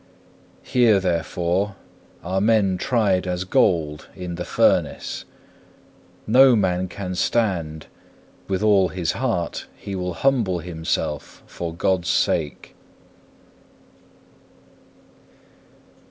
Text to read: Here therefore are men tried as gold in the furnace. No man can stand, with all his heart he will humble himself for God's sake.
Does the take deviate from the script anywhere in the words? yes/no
no